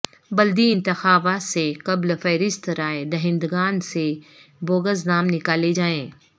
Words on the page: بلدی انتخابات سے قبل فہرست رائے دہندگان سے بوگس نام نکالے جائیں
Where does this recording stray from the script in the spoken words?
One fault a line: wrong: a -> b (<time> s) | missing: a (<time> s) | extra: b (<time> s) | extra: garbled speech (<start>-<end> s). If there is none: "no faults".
no faults